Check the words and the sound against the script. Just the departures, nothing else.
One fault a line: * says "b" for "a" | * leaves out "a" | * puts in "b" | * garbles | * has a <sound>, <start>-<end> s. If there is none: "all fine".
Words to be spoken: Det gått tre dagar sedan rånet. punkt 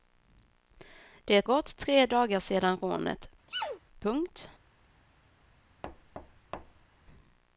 * has a sneeze, 3.5-3.8 s
* has a thud, 5.8-6.9 s